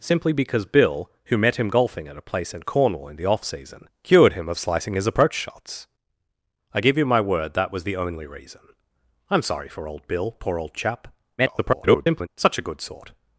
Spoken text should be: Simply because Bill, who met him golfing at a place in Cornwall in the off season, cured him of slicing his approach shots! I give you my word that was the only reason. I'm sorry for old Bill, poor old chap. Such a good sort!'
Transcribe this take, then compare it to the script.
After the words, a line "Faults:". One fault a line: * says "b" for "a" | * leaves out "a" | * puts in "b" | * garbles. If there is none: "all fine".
Simply because Bill, who met him golfing at a place in Cornwall in the off season, cured him of slicing his approach shots! I give you my word that was the only reason. I'm sorry for old Bill, poor old chap. [garbled] Such a good sort!'
Faults:
* garbles